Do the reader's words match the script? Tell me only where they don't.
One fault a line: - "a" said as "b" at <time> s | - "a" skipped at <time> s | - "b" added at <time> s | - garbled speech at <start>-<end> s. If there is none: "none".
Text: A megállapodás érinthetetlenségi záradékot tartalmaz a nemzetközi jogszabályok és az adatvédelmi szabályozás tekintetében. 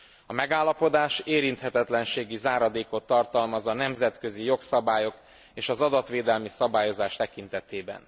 none